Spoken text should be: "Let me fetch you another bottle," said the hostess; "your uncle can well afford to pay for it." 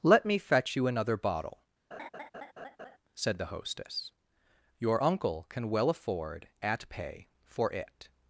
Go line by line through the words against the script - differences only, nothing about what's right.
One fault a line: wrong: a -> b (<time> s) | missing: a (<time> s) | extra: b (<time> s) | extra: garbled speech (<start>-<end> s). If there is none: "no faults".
wrong: to -> at (6.6 s)